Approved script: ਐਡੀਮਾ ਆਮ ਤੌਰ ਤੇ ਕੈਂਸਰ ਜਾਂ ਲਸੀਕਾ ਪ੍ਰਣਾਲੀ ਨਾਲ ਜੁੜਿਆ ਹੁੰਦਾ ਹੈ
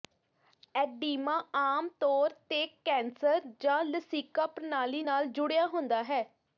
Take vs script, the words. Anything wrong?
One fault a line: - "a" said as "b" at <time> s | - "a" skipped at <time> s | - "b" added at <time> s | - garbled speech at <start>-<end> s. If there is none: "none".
none